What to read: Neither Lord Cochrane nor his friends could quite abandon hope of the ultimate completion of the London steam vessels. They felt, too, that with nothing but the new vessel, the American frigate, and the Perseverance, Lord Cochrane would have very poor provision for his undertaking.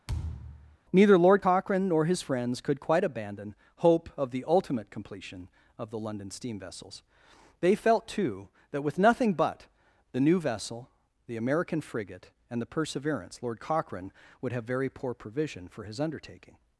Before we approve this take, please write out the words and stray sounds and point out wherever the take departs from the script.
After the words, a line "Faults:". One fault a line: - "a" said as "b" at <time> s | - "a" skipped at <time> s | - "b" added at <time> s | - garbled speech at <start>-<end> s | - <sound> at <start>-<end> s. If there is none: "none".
Neither Lord Cochrane nor his friends could quite abandon hope of the ultimate completion of the London steam vessels. They felt, too, that with nothing but the new vessel, the American frigate, and the Perseverance, Lord Cochrane would have very poor provision for his undertaking.
Faults:
- thud at 0.1-0.8 s